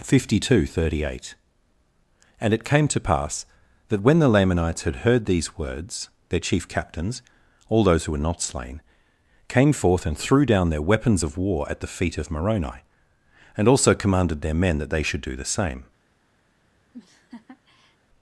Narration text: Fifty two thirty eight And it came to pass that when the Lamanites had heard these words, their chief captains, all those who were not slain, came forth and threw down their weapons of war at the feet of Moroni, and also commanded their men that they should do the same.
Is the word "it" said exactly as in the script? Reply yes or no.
yes